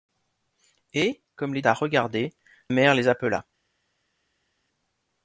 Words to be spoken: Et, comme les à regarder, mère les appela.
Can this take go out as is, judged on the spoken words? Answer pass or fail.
pass